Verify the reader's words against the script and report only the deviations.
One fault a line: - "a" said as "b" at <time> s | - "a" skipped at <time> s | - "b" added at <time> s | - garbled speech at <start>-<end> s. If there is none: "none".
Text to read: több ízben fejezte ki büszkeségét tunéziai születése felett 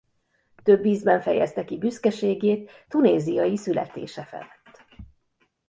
none